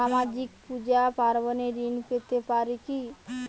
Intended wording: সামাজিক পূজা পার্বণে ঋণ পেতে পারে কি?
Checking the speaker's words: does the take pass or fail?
pass